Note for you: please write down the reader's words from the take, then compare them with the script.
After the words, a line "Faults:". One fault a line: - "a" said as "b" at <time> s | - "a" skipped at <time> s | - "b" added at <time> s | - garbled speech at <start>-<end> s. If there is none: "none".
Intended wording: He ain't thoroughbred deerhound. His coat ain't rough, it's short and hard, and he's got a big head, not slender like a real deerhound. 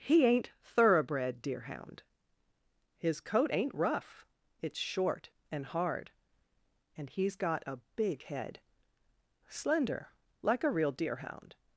He ain't thoroughbred deerhound. His coat ain't rough, it's short and hard, and he's got a big head, slender like a real deerhound.
Faults:
- "not" skipped at 8.6 s